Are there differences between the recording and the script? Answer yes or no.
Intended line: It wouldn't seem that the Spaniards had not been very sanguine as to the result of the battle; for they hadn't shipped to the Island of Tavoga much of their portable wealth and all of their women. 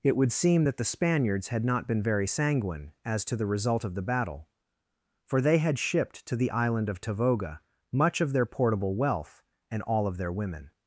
yes